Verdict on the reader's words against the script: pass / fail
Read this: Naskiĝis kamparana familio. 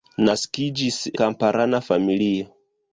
pass